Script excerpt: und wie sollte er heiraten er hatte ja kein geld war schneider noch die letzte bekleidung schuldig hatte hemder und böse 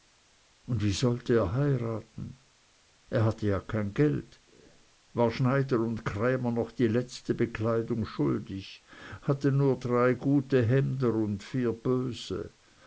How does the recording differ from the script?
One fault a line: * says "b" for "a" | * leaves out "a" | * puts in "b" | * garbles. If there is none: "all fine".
* puts in "und krämer"
* puts in "nur drei gute"
* puts in "vier"